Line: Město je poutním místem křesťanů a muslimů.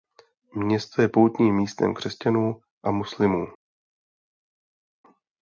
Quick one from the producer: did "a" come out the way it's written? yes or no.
yes